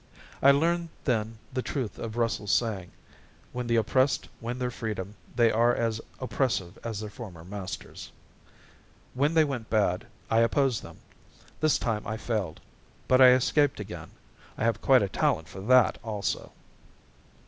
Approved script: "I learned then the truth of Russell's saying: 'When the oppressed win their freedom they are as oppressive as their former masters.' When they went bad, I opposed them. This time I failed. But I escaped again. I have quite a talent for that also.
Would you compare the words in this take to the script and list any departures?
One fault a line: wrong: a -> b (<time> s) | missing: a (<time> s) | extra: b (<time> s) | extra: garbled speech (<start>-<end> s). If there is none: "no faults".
no faults